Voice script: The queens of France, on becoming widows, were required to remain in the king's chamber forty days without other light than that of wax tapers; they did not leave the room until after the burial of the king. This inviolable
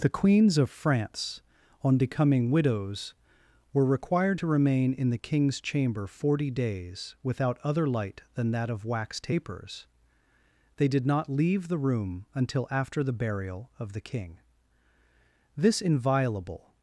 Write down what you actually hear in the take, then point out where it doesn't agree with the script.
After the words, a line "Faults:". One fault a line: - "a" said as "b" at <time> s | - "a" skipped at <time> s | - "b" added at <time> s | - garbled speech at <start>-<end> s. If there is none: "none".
The queens of France, on becoming widows, were required to remain in the king's chamber forty days without other light than that of wax tapers; they did not leave the room until after the burial of the king. This inviolable
Faults:
none